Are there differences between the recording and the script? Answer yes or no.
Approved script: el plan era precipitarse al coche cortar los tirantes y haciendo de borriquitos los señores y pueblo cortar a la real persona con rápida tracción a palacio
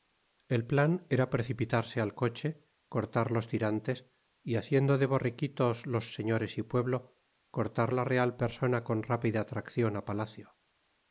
no